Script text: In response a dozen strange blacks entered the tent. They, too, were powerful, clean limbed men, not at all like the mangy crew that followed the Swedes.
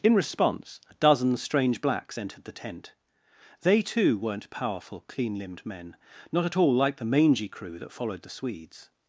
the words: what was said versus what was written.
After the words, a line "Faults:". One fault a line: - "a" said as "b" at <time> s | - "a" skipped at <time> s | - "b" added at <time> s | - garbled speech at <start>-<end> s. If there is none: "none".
In response a dozen strange blacks entered the tent. They, too, weren't powerful, clean limbed men, not at all like the mangy crew that followed the Swedes.
Faults:
- "were" said as "weren't" at 4.2 s